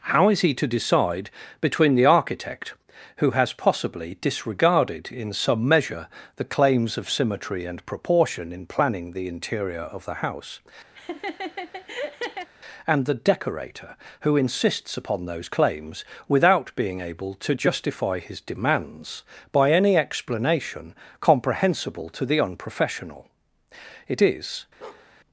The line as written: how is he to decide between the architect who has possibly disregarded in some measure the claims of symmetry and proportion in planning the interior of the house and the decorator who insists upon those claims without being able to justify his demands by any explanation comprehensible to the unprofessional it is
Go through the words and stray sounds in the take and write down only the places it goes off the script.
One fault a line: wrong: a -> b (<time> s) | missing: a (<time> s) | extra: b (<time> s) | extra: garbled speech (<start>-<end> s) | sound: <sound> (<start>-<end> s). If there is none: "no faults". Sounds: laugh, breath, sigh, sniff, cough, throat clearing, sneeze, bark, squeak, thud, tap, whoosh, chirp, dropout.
sound: laugh (10.9-12.5 s)
sound: bark (24.8-25.1 s)